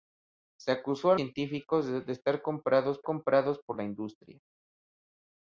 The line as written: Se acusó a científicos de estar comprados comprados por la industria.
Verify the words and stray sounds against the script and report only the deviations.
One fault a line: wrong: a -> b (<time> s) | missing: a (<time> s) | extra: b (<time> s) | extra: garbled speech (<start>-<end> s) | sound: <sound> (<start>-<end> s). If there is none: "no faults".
no faults